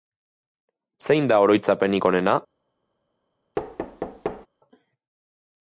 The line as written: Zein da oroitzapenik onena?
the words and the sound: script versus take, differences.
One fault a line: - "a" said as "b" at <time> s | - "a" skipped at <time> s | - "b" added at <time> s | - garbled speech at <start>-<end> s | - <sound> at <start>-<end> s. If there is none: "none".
- thud at 3.6-4.5 s